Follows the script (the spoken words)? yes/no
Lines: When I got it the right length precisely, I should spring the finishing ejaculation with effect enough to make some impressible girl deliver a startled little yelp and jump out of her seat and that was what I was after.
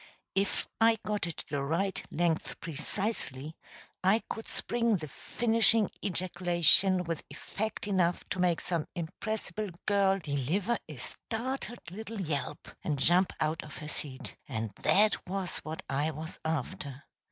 no